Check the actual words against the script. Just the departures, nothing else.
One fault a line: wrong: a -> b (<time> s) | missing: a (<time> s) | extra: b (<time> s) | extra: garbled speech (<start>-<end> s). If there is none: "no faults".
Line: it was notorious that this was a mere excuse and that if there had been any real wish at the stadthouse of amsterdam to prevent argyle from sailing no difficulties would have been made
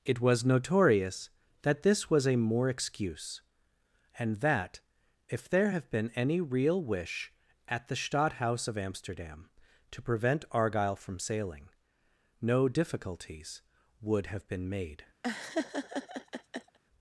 wrong: mere -> more (2.4 s)
wrong: had -> have (5.7 s)